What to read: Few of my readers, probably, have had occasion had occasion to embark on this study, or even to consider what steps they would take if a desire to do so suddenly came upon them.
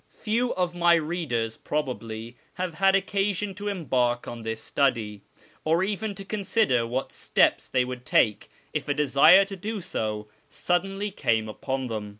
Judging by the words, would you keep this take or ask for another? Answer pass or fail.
fail